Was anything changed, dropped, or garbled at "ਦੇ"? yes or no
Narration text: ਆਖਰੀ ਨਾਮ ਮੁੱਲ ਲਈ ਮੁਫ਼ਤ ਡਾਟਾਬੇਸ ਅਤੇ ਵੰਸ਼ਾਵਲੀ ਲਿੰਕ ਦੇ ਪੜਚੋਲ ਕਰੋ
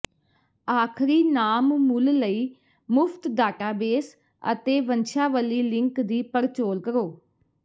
yes